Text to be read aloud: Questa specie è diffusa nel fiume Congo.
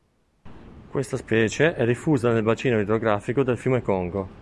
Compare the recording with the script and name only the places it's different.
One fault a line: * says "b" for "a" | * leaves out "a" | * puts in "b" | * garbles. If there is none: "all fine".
* puts in "bacino idrografico del"